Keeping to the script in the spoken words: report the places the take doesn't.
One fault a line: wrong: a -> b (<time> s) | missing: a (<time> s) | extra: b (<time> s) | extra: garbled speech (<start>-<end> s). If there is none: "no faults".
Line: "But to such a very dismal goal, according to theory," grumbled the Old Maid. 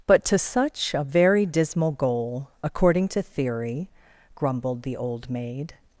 no faults